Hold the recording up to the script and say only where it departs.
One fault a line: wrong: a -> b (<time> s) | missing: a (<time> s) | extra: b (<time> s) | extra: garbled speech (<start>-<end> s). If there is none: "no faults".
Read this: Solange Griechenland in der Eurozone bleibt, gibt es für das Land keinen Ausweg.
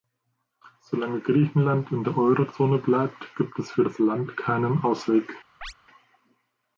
no faults